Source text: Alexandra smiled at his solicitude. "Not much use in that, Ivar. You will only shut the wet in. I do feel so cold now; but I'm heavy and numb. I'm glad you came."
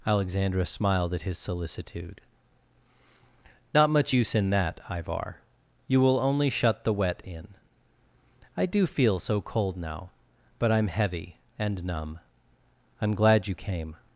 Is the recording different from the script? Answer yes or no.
no